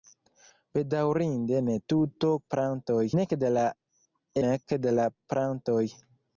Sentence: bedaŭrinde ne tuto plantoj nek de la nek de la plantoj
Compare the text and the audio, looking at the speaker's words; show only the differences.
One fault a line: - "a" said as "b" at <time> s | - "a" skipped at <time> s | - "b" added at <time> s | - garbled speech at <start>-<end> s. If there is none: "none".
none